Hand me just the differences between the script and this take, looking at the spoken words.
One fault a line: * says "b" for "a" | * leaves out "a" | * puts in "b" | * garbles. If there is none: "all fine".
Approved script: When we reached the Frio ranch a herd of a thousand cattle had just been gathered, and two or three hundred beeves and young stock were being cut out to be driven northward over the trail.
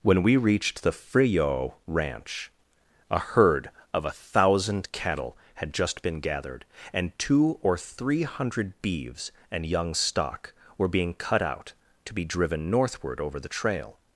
all fine